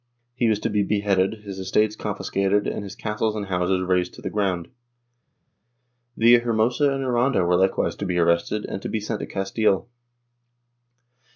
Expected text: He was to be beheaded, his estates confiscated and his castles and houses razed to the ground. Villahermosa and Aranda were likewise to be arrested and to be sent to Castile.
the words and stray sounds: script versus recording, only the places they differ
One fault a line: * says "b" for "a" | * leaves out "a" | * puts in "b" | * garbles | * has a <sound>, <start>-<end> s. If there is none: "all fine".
all fine